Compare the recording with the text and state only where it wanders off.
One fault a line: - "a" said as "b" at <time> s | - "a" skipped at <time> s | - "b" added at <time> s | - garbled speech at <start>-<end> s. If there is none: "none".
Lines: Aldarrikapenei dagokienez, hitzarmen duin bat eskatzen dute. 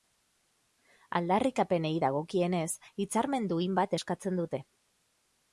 none